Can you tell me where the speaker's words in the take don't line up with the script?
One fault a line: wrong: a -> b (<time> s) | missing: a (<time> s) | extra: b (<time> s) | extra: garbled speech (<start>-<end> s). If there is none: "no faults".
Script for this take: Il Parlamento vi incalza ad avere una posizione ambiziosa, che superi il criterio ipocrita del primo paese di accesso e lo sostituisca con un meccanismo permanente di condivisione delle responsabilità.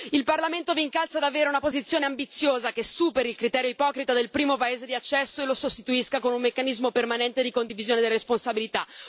no faults